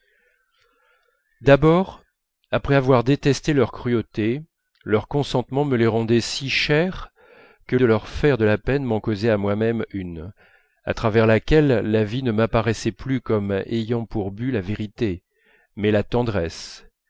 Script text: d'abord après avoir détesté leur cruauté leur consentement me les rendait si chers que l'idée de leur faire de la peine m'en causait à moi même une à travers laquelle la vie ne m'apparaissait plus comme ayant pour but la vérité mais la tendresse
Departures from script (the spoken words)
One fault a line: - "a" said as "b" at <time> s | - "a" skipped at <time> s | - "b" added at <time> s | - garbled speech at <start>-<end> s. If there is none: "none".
- "l'idée" skipped at 7.8 s